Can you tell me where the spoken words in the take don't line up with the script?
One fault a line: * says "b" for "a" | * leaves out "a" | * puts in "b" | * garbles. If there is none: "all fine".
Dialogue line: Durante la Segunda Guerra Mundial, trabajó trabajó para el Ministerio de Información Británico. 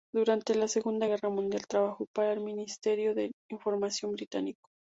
* leaves out "trabajó"